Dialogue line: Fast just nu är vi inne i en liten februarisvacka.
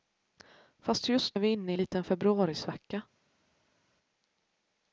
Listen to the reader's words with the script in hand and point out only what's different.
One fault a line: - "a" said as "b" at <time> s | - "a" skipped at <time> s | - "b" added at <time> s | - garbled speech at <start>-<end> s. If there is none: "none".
- "nu" skipped at 1.4 s
- "en" skipped at 1.8 s